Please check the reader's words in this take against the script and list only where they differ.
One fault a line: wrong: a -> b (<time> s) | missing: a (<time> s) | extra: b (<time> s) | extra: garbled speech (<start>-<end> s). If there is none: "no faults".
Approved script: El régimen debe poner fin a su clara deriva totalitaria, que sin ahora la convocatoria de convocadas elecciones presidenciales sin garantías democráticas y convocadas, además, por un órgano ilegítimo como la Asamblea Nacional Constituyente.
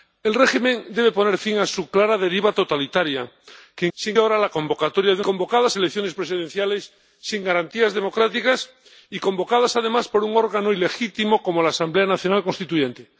no faults